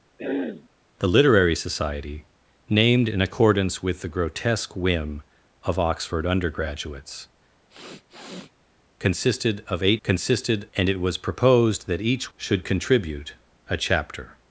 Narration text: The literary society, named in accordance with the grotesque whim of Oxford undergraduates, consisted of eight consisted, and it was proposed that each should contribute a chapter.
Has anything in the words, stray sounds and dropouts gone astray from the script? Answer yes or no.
yes